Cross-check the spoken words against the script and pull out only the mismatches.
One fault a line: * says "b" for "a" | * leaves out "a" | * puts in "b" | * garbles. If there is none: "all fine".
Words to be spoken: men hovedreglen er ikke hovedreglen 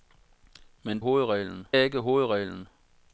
all fine